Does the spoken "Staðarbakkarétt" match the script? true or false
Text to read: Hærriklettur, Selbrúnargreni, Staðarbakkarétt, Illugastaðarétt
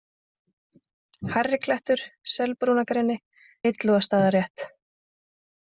false